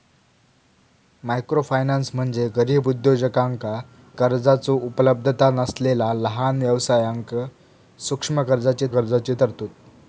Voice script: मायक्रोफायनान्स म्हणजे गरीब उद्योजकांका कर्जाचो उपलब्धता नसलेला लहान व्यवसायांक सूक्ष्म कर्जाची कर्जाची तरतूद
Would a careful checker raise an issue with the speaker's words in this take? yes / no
no